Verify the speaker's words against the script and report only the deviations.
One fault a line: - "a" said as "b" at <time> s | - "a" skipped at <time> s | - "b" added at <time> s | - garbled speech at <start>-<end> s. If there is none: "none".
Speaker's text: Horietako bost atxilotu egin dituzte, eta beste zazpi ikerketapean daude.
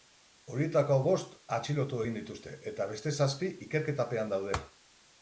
none